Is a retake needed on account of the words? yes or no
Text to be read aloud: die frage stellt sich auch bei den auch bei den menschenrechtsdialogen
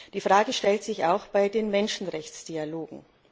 yes